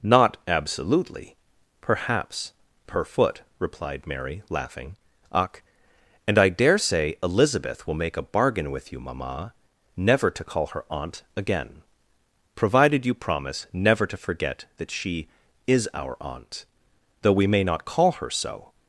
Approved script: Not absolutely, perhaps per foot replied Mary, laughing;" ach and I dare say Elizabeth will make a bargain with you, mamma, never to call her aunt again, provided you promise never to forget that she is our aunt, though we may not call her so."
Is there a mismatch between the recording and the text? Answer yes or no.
no